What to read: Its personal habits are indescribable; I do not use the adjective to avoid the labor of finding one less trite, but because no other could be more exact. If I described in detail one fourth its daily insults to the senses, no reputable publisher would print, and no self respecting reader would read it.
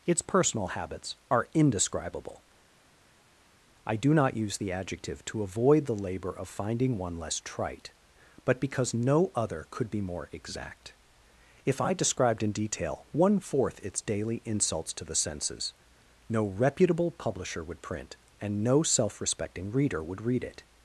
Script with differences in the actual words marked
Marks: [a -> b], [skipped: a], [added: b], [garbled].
Its personal habits are indescribable; I do not use the adjective to avoid the labor of finding one less trite, but because no other could be more exact. If I described in detail one fourth its daily insults to the senses, no reputable publisher would print, and no self respecting reader would read it.